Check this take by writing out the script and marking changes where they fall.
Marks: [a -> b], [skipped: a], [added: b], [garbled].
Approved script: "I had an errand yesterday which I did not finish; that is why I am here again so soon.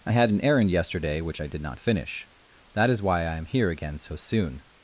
"I had an errand yesterday which I did not finish; that is why I am here again so soon.